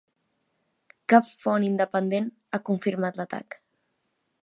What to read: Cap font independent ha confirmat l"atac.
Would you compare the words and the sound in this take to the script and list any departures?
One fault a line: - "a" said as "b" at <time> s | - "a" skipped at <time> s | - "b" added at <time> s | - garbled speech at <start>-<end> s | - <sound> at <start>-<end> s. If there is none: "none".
none